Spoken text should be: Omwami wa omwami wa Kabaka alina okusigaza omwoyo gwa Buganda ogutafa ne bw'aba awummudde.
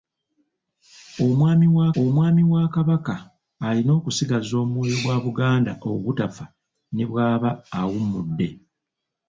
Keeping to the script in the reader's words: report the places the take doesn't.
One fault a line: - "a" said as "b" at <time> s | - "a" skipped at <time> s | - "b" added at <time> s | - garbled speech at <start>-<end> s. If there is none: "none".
none